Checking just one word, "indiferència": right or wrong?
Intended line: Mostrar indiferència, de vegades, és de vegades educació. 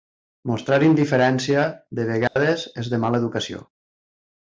right